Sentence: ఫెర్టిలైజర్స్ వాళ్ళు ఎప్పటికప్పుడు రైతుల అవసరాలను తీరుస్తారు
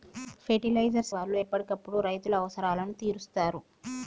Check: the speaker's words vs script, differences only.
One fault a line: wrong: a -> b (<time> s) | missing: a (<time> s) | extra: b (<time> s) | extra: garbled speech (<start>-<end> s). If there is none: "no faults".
no faults